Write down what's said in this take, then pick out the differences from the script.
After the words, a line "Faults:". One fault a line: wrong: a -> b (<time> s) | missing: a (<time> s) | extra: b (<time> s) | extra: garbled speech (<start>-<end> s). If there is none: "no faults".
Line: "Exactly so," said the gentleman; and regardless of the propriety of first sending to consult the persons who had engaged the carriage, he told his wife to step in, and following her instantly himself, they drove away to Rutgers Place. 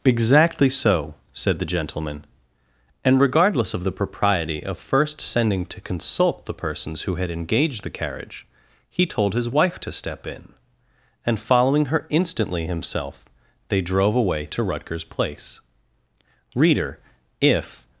"Exactly so," said the gentleman; and regardless of the propriety of first sending to consult the persons who had engaged the carriage, he told his wife to step in, and following her instantly himself, they drove away to Rutgers Place. Reader, if
Faults:
extra: Reader if (16.6 s)